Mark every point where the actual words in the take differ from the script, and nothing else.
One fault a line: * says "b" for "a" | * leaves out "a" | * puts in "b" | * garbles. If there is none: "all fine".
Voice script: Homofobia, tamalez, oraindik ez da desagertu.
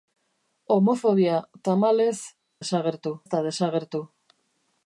* says "desagertu" for "oraindik"